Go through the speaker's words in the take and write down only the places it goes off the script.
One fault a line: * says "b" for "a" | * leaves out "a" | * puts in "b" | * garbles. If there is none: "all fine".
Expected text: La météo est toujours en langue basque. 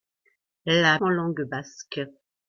* leaves out "météo est toujours"